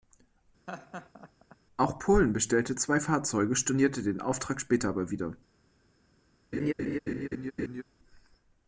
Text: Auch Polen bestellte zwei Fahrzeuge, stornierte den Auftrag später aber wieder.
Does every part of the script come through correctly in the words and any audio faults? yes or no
no